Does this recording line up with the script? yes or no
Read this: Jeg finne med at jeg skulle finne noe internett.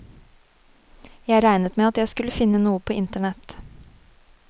no